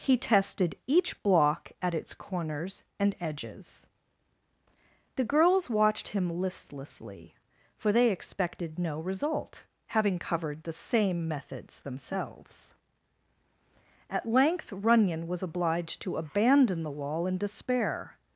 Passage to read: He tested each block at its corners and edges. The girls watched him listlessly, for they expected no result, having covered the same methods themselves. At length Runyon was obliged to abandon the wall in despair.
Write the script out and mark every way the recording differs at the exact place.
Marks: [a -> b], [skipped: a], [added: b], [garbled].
He tested each block at its corners and edges. The girls watched him listlessly, for they expected no result, having covered the same methods themselves. At length Runyon was obliged to abandon the wall in despair.